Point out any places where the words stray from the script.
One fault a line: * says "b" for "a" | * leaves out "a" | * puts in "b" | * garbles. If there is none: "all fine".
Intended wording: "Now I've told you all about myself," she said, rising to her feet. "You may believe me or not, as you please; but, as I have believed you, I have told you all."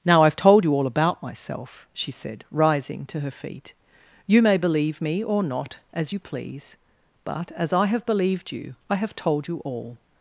all fine